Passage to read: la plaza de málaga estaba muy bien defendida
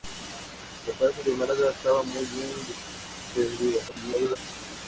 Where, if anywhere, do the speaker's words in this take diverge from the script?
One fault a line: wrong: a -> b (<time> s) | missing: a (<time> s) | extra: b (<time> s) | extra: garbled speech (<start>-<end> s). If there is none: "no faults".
extra: garbled speech (3.9-4.4 s)